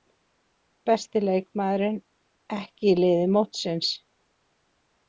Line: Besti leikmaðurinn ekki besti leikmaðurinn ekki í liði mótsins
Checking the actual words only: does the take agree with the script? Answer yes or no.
no